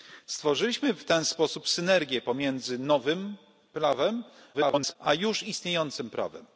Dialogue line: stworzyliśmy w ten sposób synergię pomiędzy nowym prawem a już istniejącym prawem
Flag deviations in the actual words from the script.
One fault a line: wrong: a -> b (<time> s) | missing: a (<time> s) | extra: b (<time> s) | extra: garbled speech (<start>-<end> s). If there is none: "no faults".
extra: garbled speech (4.5-5.0 s)